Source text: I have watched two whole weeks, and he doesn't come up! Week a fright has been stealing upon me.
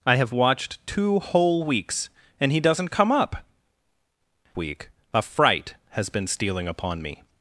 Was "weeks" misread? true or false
false